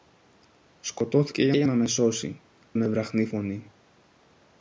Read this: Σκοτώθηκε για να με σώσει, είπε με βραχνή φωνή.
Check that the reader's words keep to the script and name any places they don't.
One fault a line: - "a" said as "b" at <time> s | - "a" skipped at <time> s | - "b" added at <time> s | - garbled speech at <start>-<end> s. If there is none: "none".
- "για" added at 1.6 s
- "είπε" skipped at 2.4 s